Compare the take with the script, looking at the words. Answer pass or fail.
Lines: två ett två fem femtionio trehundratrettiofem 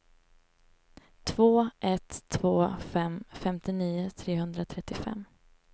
pass